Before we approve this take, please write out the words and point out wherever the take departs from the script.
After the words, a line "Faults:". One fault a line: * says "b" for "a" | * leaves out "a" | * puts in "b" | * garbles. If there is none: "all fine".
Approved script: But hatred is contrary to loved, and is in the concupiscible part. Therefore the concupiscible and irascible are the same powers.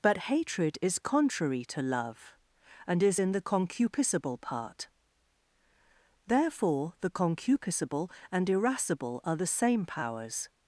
But hatred is contrary to love, and is in the concupiscible part. Therefore the concupiscible and irascible are the same powers.
Faults:
* says "love" for "loved"